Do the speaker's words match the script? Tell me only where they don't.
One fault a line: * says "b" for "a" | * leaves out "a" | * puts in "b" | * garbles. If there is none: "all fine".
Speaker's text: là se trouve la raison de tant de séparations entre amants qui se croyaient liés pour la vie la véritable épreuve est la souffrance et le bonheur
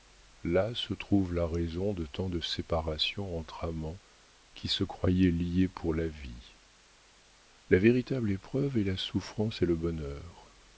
all fine